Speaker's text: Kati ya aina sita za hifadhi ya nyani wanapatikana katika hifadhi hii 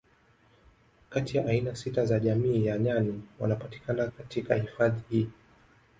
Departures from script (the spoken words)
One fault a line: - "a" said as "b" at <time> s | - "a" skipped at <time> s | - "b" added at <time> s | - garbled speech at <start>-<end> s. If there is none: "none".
- "hifadhi" said as "jamii" at 2.2 s